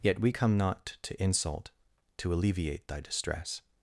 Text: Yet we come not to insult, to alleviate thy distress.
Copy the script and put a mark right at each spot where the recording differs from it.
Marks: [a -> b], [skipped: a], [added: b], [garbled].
Yet we come not to insult, to alleviate thy distress.